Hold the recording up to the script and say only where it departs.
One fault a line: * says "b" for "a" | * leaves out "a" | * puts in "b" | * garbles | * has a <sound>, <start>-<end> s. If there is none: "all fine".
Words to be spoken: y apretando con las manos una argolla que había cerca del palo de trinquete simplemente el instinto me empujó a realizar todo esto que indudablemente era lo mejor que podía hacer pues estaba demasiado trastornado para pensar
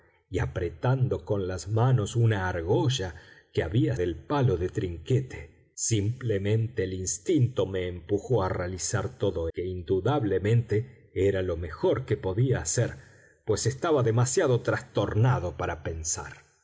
* leaves out "cerca"
* leaves out "esto"